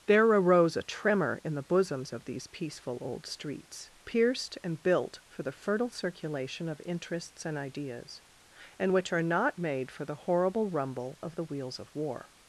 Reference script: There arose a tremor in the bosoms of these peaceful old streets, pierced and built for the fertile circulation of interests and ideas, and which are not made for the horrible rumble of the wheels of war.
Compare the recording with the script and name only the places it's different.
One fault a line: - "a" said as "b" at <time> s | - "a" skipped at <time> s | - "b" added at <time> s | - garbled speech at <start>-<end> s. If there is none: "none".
none